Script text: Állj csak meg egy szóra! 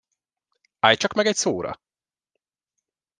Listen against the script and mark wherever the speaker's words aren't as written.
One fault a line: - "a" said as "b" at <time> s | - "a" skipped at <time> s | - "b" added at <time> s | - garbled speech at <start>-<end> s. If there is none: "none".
none